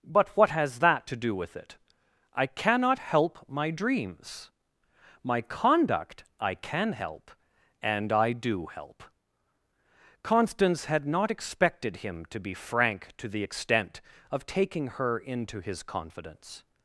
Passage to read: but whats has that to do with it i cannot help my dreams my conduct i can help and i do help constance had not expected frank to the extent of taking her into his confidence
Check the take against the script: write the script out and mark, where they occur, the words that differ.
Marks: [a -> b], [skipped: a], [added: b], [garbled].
but [whats -> what] has that to do with it i cannot help my dreams my conduct i can help and i do help constance had not expected [added: him to be] frank to the extent of taking her into his confidence